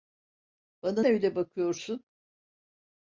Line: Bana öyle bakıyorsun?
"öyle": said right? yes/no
yes